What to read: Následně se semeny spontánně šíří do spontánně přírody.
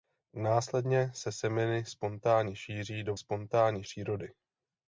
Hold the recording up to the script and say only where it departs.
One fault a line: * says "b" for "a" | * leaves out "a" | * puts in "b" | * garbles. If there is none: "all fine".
all fine